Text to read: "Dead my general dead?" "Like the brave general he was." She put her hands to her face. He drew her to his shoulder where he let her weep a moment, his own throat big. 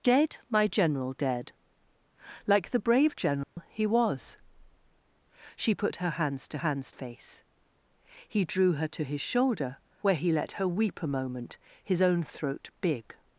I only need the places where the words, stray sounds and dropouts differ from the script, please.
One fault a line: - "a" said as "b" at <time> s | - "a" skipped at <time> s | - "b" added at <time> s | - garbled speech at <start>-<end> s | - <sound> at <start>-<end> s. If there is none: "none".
- dropout at 3.4-3.6 s
- "her" said as "hands" at 6.6 s